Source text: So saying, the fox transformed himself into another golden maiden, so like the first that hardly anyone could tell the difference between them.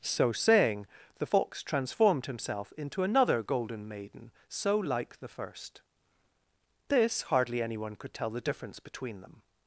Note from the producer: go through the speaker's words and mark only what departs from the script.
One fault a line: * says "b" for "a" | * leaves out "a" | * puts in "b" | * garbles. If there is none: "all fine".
* says "this" for "that"